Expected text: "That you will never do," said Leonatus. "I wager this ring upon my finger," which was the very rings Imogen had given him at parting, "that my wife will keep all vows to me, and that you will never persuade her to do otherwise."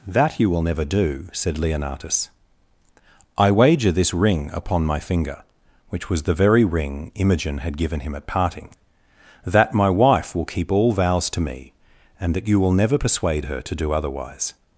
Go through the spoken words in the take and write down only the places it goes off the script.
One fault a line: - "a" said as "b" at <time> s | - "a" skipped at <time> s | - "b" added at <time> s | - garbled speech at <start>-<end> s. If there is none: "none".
- "rings" said as "ring" at 6.6 s